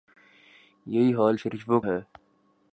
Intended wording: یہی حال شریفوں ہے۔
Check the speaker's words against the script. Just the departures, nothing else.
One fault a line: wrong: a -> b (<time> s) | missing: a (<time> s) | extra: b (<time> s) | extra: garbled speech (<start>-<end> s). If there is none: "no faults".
no faults